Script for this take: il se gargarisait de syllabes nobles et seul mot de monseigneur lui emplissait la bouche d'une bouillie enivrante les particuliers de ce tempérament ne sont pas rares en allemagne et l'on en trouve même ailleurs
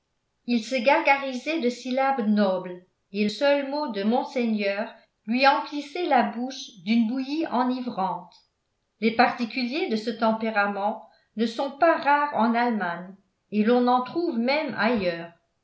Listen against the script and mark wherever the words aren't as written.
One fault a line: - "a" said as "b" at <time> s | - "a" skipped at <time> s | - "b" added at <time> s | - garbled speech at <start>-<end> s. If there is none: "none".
none